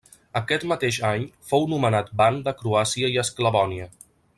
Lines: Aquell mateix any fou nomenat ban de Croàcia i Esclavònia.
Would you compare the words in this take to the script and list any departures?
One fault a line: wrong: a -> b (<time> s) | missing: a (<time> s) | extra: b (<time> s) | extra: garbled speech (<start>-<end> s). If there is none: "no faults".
wrong: Aquell -> Aquest (0.4 s)